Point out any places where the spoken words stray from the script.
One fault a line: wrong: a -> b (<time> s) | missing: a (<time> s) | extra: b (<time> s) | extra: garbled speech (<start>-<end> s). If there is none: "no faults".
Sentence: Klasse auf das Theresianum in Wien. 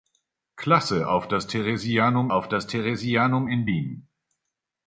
extra: auf das Theresianum (2.3 s)